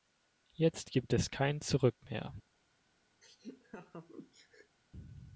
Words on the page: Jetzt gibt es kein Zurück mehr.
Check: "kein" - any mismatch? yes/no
no